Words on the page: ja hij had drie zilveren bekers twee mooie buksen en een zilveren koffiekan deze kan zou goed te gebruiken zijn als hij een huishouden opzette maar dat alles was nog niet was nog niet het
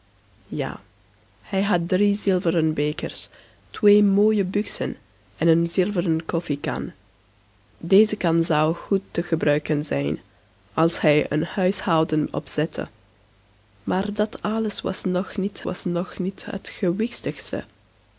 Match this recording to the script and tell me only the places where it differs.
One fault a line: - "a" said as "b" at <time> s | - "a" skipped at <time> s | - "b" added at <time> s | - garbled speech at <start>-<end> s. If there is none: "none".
none